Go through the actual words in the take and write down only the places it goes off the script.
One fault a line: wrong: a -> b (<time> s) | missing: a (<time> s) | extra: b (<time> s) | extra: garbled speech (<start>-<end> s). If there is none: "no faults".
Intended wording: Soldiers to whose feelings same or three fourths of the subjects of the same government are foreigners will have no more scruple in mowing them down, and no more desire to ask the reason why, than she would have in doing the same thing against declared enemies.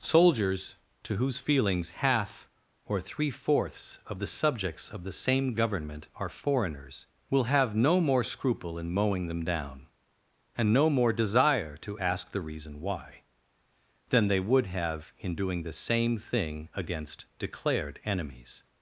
wrong: same -> half (1.9 s)
wrong: she -> they (14.3 s)